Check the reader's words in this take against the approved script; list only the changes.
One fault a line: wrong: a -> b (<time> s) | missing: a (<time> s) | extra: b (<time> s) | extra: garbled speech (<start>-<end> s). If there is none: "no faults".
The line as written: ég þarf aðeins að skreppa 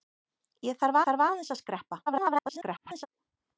extra: þarf (1.1 s)
extra: garbled speech (2.1-3.1 s)